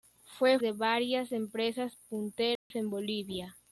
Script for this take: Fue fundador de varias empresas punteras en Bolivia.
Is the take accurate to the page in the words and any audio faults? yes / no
no